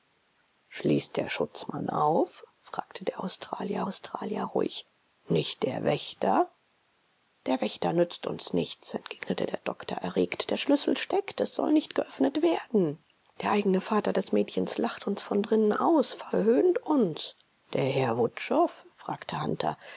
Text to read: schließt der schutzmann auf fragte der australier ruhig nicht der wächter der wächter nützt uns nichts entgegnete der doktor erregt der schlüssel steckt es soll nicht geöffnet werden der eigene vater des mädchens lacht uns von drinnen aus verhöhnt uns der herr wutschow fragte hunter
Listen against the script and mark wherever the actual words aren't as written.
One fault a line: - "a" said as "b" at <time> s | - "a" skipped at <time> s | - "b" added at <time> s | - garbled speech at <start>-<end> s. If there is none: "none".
- "australier" added at 3.9 s